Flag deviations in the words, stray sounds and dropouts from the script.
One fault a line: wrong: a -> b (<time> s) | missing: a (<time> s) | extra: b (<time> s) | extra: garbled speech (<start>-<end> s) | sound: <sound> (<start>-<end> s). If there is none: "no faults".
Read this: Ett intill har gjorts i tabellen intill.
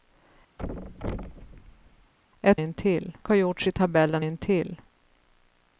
sound: thud (0.6-2.1 s)